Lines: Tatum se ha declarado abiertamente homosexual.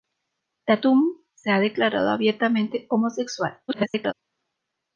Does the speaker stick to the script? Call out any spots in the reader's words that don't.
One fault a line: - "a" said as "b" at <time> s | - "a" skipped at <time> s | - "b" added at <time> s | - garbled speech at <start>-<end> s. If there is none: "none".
- garbled speech at 3.7-4.1 s